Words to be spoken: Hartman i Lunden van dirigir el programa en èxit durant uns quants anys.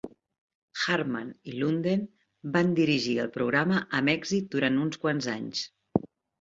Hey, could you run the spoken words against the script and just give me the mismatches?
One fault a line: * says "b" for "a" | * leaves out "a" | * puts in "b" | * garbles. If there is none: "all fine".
* says "amb" for "en"